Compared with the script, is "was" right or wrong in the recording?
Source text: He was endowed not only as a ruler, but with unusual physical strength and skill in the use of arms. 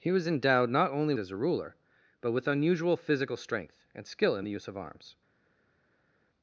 right